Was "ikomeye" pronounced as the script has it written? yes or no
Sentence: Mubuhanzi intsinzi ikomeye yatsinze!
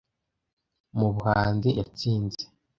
no